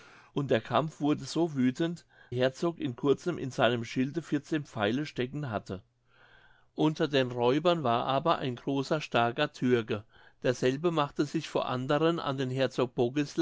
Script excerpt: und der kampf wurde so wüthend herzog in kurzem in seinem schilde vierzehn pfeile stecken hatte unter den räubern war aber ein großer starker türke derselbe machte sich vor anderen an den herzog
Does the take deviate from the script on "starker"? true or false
false